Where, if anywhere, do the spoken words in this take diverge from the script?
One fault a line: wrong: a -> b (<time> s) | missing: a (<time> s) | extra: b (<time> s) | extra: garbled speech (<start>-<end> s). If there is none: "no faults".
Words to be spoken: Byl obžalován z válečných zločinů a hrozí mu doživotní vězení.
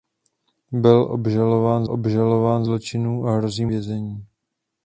wrong: válečných -> obžalován (1.9 s)
missing: mu doživotní (3.7 s)